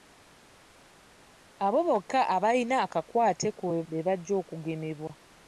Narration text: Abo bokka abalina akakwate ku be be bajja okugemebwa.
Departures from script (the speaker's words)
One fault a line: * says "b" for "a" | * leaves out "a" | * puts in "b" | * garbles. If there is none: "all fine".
all fine